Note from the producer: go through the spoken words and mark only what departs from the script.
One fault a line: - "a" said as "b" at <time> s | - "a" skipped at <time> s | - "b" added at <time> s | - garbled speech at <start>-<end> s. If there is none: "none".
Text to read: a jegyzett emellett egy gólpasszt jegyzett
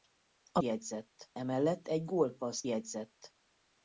none